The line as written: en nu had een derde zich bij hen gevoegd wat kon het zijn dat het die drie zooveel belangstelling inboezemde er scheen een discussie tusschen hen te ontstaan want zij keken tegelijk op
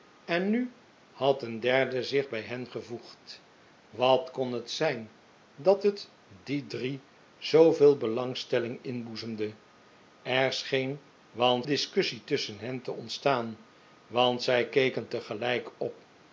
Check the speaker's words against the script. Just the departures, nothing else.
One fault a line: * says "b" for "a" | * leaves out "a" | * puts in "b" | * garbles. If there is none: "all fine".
* says "want" for "een"